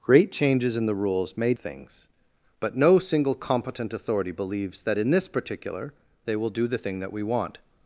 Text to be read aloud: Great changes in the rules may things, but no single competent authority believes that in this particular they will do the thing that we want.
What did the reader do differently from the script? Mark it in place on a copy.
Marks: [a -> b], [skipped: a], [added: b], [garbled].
Great changes in the rules may things, but no single competent authority believes that in this particular they will do the thing that we want.